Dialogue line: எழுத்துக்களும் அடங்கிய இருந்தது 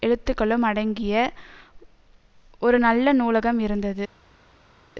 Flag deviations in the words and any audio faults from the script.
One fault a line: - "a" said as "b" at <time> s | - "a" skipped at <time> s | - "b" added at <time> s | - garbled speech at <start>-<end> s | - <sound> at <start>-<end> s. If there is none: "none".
- "ஒரு நல்ல நூலகம்" added at 2.6 s